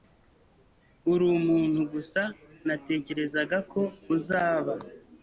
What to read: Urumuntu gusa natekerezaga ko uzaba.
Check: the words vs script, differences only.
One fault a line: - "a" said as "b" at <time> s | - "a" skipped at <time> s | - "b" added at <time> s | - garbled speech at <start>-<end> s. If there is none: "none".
none